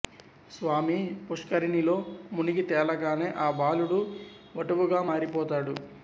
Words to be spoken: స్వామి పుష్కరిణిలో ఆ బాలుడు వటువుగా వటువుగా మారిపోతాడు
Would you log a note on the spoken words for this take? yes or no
yes